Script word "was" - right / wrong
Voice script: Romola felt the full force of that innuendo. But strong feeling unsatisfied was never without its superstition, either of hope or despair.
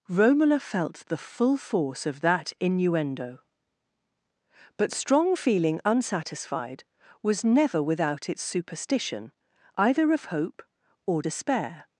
right